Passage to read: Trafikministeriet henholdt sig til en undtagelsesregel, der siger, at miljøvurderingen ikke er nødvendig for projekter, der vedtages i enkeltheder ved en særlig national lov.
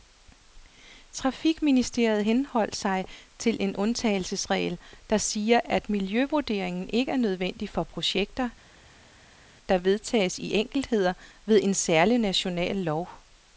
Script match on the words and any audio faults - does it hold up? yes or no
yes